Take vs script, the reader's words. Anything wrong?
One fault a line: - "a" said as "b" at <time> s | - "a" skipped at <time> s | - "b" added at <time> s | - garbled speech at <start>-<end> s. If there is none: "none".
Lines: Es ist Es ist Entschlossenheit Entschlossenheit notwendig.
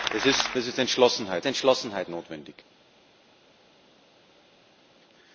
none